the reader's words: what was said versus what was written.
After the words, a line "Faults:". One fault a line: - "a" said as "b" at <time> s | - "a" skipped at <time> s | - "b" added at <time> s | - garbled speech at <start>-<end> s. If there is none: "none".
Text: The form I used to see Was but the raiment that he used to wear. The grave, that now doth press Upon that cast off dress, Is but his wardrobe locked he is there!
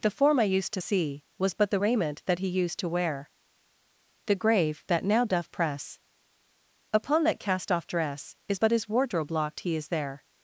The form I used to see Was but the raiment that he used to wear. The grave, that now doth press Upon that cast off dress, Is but his wardrobe locked he is there!
Faults:
none